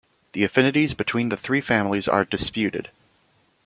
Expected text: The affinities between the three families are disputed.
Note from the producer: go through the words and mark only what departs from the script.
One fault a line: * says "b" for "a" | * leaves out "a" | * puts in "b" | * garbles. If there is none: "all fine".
all fine